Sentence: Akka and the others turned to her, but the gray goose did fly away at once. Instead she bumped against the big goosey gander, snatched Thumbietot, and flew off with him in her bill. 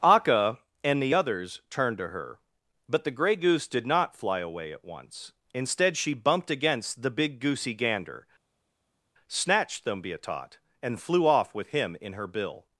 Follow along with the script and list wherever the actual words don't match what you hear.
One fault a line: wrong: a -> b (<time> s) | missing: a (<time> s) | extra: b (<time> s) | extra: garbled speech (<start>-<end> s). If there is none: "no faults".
extra: not (3.9 s)